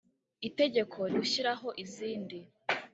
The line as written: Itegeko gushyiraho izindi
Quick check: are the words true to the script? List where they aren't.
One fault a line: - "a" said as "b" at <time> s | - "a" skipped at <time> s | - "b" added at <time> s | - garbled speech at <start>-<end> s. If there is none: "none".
none